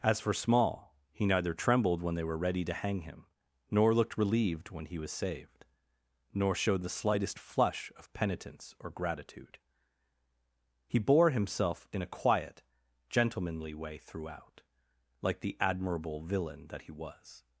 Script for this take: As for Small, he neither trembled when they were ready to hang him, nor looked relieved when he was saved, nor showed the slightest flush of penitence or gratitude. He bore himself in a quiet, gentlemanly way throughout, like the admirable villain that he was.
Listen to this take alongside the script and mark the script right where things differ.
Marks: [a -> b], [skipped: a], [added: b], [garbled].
As for Small, he neither trembled when they were ready to hang him, nor looked relieved when he was saved, nor showed the slightest flush of penitence or gratitude. He bore himself in a quiet, gentlemanly way throughout, like the admirable villain that he was.